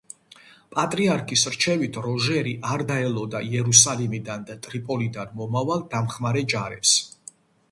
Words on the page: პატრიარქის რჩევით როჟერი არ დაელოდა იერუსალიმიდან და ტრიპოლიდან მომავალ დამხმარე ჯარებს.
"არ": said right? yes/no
yes